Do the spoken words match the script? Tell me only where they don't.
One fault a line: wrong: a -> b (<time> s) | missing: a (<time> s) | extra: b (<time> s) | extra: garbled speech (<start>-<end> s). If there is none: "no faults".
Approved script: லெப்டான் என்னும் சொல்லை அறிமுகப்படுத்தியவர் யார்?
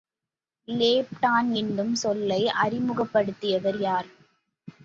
no faults